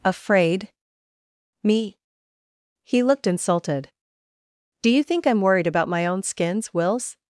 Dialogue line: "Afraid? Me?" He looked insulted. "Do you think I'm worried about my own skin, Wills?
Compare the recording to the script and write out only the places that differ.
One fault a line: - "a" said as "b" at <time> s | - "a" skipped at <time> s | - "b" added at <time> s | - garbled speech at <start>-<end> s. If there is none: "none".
- "skin" said as "skins" at 6.2 s